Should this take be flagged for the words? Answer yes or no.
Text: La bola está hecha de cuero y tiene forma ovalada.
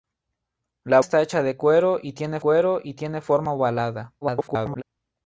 yes